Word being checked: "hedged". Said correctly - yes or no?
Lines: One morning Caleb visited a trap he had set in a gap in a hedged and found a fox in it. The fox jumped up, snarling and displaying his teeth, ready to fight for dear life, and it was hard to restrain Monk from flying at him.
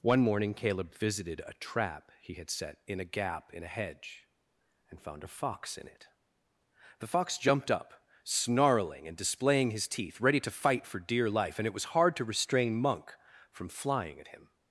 no